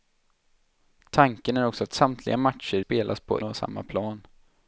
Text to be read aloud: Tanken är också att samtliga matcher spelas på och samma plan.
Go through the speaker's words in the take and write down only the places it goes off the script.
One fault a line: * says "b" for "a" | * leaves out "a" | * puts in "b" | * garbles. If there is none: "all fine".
all fine